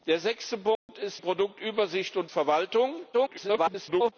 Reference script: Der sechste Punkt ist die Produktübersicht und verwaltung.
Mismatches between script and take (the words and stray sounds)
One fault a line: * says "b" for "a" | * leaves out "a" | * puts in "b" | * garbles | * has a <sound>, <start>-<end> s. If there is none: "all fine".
* has a dropout, 0.8-0.9 s
* leaves out "die"
* garbles